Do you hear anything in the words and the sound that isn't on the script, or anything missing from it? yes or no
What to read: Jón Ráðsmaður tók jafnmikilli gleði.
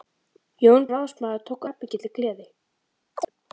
yes